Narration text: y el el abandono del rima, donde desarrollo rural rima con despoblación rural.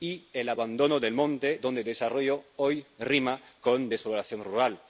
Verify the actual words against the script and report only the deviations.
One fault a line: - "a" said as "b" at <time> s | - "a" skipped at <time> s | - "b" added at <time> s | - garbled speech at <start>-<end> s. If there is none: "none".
- "el" skipped at 0.5 s
- "rima" said as "monte" at 1.1 s
- "rural" said as "hoy" at 2.5 s